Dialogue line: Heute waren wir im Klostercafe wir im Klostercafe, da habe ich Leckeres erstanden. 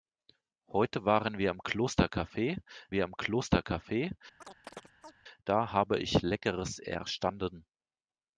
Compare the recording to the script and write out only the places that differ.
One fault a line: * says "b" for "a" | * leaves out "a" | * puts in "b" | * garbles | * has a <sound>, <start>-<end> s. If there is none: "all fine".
* has a chirp, 4.4-5.1 s